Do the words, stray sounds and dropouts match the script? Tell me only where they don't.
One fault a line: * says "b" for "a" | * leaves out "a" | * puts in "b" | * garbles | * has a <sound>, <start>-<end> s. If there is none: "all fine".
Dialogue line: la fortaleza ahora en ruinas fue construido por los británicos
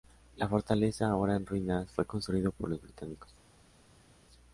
all fine